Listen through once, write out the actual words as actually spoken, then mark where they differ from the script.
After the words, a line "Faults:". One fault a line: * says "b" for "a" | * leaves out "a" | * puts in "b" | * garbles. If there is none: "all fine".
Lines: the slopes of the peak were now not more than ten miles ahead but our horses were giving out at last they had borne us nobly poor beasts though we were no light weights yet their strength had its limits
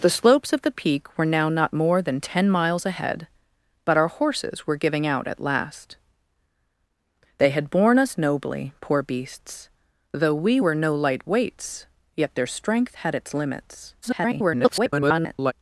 the slopes of the peak were now not more than ten miles ahead but our horses were giving out at last they had borne us nobly poor beasts though we were no light weights yet their strength had its limits [garbled]
Faults:
* garbles